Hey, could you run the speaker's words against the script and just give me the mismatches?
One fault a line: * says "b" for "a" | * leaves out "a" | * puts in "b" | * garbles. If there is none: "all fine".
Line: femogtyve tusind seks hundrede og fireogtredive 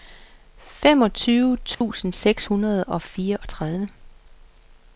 all fine